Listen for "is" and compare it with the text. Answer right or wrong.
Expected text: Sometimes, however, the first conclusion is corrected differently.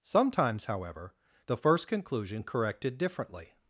wrong